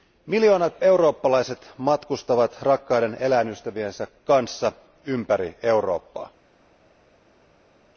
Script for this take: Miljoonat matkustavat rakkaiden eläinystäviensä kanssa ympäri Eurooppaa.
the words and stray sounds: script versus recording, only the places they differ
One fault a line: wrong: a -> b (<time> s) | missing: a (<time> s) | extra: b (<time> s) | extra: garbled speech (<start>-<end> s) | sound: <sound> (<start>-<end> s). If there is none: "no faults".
extra: eurooppalaiset (0.8 s)